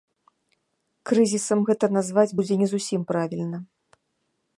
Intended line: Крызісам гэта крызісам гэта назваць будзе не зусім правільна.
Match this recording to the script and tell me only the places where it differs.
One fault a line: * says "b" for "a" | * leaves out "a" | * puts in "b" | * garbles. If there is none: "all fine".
* leaves out "крызісам гэта"